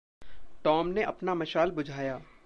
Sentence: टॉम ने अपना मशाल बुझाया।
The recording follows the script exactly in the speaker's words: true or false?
true